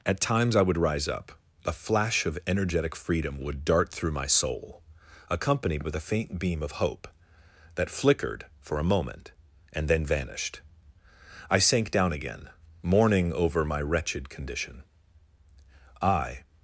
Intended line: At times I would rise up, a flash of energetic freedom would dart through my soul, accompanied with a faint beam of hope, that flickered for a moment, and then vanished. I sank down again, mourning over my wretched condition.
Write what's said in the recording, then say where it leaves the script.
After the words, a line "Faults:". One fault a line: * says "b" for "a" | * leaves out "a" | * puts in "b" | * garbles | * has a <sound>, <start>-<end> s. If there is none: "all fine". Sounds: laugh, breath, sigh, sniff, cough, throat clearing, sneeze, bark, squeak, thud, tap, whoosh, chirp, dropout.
At times I would rise up, a flash of energetic freedom would dart through my soul, accompanied with a faint beam of hope, that flickered for a moment, and then vanished. I sank down again, mourning over my wretched condition. I
Faults:
* puts in "I"